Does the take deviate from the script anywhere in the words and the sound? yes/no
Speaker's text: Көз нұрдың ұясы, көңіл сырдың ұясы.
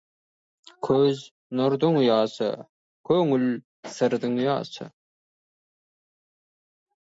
no